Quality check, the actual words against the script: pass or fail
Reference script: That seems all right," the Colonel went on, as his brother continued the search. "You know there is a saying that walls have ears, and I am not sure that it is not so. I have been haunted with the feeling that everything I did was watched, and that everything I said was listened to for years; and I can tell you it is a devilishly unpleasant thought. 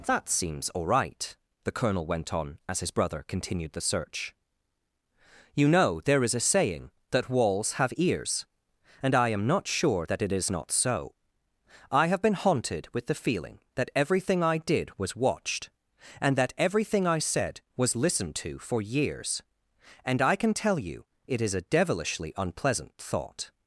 pass